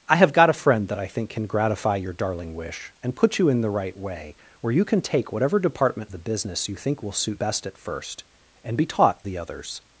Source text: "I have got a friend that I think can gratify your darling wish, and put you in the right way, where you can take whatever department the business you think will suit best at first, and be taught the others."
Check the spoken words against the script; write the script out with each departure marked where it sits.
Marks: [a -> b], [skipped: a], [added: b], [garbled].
"I have got a friend that I think can gratify your darling wish, and put you in the right way, where you can take whatever department the business you think will suit best at first, and be taught the others."